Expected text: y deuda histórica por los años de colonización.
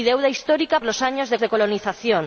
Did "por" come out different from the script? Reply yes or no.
yes